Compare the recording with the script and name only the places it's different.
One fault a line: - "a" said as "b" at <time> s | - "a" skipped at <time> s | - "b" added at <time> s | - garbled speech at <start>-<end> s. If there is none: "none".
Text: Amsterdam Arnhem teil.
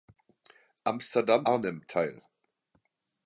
none